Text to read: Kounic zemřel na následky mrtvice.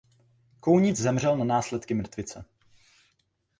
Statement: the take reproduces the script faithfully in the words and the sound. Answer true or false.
true